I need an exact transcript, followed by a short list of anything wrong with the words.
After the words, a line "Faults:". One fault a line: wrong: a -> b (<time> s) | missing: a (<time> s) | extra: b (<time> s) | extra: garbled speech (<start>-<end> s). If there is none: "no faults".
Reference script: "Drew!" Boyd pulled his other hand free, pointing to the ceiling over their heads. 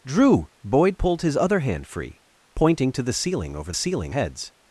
"Drew!" Boyd pulled his other hand free, pointing to the ceiling over ceiling heads.
Faults:
wrong: their -> ceiling (3.7 s)